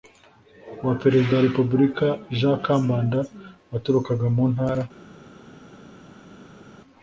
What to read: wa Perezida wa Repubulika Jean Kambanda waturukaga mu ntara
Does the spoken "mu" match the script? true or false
true